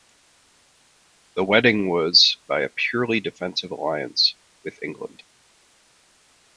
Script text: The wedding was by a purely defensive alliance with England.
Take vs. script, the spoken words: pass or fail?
pass